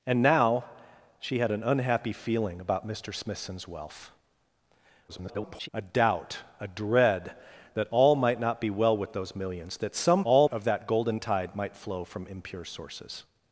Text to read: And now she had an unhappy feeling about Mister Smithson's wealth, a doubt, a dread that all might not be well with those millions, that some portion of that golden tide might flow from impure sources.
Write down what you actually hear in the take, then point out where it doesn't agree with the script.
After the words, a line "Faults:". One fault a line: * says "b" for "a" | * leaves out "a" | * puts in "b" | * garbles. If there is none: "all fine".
And now she had an unhappy feeling about Mister Smithson's wealth, [garbled] a doubt, a dread that all might not be well with those millions, that some all of that golden tide might flow from impure sources.
Faults:
* garbles
* says "all" for "portion"